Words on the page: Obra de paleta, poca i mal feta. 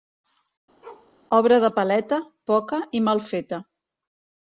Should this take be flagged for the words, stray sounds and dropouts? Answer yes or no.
yes